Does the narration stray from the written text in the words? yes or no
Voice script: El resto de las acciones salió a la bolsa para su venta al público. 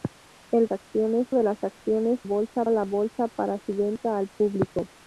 yes